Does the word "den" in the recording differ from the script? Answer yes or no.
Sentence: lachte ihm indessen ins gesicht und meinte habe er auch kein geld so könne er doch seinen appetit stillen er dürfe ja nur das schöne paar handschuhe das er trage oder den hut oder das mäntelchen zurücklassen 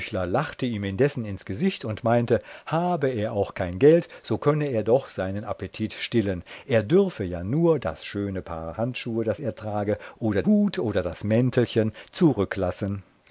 yes